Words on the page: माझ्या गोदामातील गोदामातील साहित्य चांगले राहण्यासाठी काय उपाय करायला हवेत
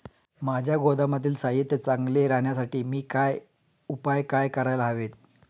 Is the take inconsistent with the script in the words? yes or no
yes